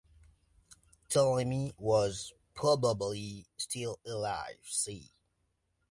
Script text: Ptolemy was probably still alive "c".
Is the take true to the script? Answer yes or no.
yes